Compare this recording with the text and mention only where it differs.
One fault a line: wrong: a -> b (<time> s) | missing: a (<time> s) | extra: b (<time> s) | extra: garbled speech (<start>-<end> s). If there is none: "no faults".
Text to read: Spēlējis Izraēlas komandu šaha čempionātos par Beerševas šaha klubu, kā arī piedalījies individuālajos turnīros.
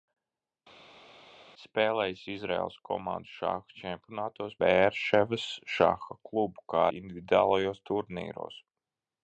missing: par (4.6 s)
missing: arī piedalījies (6.9 s)